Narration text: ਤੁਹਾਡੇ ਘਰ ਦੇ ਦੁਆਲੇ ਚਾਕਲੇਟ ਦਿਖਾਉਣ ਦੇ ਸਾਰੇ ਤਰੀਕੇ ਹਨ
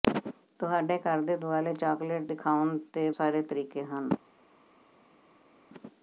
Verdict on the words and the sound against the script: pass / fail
pass